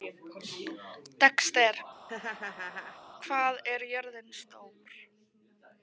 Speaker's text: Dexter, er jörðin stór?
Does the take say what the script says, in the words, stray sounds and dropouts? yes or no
no